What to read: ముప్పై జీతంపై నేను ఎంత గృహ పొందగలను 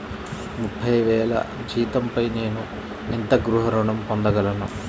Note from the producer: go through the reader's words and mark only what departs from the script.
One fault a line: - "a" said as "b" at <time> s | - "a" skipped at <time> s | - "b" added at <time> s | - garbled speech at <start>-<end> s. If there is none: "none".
- "వేల" added at 1.0 s
- "ఋణం" added at 3.7 s